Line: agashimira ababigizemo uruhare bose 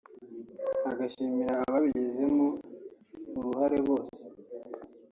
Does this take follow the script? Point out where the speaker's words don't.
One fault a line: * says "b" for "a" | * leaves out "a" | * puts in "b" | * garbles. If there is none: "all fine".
all fine